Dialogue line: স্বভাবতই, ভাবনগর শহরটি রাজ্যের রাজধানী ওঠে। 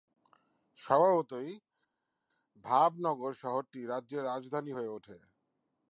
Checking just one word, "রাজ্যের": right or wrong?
right